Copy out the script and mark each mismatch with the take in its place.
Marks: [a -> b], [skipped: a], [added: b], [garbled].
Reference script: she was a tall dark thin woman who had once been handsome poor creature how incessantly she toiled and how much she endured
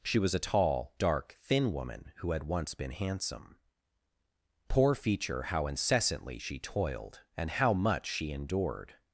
she was a tall dark thin woman who had once been handsome poor [creature -> feature] how incessantly she toiled and how much she endured